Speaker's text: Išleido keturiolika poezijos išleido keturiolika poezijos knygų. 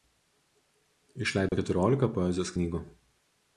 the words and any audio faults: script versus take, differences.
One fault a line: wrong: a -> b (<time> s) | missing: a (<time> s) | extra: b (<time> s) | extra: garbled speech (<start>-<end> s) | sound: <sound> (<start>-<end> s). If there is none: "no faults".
sound: dropout (1.5-1.5 s)
missing: išleido keturiolika poezijos (2.5 s)